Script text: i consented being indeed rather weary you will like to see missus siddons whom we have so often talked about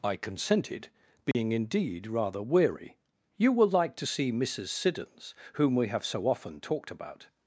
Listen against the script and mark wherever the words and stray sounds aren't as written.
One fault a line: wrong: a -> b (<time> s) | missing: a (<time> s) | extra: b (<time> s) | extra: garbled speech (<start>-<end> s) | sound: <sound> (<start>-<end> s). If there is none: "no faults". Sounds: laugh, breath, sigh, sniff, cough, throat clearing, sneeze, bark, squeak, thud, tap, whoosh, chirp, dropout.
sound: dropout (1.3-1.3 s)